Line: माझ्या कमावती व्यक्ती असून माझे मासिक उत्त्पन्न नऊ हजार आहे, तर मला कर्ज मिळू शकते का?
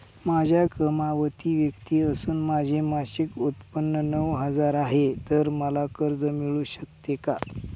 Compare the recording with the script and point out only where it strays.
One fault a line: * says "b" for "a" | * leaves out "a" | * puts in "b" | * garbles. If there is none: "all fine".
all fine